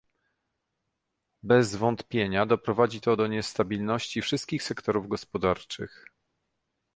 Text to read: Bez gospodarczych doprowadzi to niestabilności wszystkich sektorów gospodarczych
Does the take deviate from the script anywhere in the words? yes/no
yes